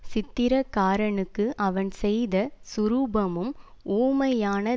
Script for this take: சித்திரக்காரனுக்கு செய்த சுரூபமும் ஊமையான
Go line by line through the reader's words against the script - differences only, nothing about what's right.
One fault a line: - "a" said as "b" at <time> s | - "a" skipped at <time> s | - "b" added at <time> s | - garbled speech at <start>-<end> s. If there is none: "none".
- "அவன்" added at 1.7 s